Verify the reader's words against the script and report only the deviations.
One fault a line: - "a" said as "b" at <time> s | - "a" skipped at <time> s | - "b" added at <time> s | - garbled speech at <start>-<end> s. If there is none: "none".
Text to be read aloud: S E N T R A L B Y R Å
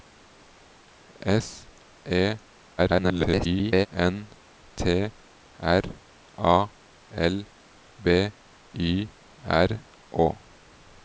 - garbled speech at 2.8-3.9 s